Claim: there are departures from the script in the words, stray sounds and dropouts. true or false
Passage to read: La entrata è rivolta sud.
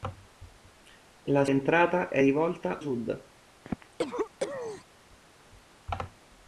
true